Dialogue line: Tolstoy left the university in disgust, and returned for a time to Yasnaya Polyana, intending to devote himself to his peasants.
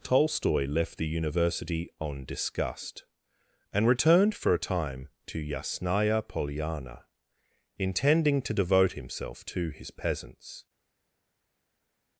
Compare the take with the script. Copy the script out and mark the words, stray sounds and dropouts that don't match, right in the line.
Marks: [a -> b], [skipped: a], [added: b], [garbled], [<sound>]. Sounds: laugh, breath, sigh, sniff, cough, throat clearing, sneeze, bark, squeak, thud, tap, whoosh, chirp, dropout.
Tolstoy left the university [in -> on] disgust, and returned for a time to Yasnaya Polyana, intending to devote himself to his peasants.